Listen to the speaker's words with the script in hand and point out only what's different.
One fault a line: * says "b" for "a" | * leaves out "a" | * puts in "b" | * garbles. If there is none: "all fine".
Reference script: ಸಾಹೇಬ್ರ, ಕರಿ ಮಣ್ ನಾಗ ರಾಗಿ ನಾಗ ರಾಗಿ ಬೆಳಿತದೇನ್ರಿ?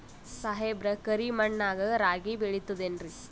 * leaves out "ನಾಗ ರಾಗಿ"